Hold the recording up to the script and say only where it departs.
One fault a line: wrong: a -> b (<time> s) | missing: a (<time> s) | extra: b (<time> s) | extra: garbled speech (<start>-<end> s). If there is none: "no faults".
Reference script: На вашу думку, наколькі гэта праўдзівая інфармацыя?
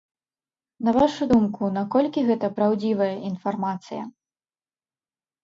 no faults